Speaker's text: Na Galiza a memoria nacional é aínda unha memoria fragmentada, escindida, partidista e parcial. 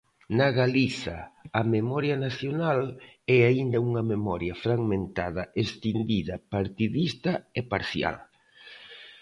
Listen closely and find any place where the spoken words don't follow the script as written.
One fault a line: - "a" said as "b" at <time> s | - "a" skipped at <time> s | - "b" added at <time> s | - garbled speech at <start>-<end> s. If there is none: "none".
none